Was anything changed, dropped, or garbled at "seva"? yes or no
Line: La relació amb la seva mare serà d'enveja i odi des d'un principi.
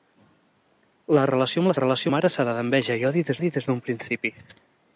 yes